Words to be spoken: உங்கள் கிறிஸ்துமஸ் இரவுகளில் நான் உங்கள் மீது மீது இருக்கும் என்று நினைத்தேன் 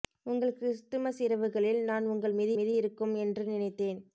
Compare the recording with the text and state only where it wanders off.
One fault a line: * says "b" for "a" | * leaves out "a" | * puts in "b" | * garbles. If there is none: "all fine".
all fine